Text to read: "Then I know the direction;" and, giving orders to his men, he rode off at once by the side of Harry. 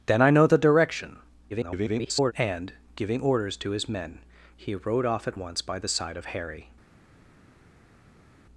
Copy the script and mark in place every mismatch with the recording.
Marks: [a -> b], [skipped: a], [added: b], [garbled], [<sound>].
"Then I know the direction;" [garbled] and, giving orders to his men, he rode off at once by the side of Harry.